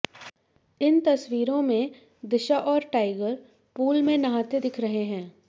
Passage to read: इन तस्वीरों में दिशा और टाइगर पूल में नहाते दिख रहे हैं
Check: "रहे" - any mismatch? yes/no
no